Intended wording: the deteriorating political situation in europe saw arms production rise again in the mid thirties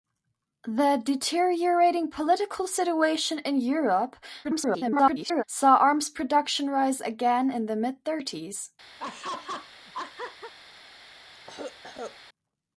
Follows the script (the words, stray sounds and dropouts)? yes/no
no